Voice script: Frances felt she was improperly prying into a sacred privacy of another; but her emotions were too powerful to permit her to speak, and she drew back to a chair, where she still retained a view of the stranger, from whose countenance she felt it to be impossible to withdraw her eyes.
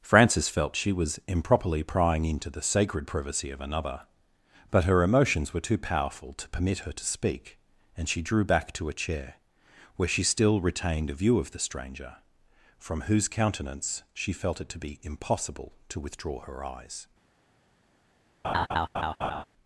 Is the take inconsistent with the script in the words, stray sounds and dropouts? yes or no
yes